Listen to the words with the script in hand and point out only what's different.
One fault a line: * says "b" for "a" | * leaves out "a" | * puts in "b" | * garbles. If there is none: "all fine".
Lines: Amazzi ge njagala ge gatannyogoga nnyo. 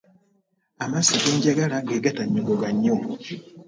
all fine